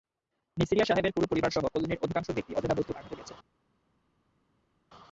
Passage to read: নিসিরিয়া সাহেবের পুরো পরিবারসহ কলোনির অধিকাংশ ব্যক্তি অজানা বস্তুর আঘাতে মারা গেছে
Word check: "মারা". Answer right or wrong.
wrong